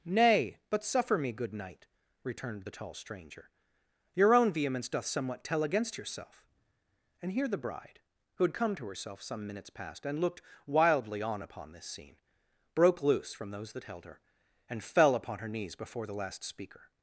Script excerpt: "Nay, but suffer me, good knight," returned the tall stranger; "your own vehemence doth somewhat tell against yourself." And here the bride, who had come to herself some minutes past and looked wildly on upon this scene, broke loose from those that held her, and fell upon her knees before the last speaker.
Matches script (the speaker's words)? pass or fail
pass